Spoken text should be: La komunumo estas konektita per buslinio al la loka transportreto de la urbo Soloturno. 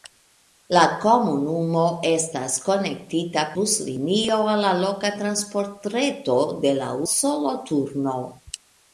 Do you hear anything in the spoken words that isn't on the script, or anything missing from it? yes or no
yes